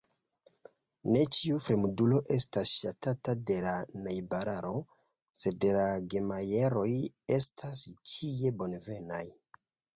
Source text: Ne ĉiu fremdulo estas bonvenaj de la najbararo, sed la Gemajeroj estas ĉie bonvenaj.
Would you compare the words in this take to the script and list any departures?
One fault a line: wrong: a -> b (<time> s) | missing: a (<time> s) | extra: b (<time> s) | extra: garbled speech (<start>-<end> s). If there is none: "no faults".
wrong: bonvenaj -> ŝatata (2.8 s)